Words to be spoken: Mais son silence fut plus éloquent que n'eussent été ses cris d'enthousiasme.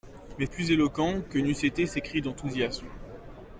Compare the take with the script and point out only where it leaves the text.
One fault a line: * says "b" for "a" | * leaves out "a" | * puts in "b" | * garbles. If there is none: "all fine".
* leaves out "son silence fut"